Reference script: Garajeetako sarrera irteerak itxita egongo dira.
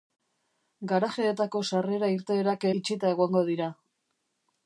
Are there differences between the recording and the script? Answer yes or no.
no